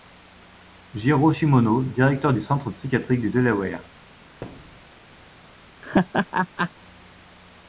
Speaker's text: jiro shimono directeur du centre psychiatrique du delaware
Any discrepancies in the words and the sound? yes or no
yes